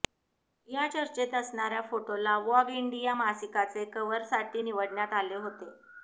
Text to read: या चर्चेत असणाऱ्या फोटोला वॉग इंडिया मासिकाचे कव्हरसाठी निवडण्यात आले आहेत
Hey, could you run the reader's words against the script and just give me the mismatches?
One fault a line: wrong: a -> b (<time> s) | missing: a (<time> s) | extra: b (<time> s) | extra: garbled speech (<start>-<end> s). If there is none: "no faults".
wrong: आहेत -> होते (5.4 s)